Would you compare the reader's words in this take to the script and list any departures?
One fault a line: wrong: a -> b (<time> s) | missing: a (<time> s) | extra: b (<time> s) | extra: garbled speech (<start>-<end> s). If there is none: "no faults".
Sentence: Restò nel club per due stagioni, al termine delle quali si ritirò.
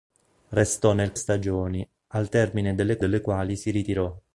missing: club per due (1.1 s)
extra: delle (3.0 s)